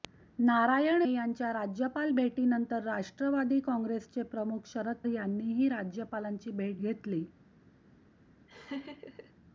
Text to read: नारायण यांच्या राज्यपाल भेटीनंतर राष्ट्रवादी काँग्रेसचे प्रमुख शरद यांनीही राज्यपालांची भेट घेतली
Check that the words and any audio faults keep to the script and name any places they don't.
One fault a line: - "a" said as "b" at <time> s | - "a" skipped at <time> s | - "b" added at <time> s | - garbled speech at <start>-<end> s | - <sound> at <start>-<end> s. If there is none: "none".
- laugh at 8.5-9.3 s